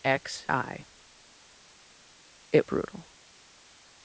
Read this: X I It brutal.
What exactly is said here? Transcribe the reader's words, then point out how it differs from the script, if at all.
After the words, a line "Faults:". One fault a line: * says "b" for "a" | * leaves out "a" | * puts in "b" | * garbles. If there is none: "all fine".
X I It brutal.
Faults:
all fine